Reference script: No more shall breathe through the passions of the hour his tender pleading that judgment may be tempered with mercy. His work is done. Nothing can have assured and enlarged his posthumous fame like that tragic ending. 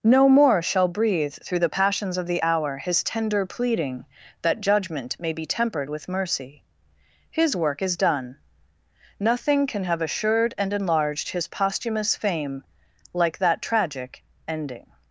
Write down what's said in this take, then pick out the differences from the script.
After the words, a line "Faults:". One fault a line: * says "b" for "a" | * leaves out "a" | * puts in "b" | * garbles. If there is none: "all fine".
No more shall breathe through the passions of the hour his tender pleading that judgment may be tempered with mercy. His work is done. Nothing can have assured and enlarged his posthumous fame like that tragic ending.
Faults:
all fine